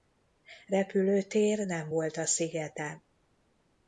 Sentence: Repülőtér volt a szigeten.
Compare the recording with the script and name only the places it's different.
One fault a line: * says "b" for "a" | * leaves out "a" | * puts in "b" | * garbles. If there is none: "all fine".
* puts in "nem"